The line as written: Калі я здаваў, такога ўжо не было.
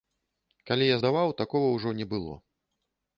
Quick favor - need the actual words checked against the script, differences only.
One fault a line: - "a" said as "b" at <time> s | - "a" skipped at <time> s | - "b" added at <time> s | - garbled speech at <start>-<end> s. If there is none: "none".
none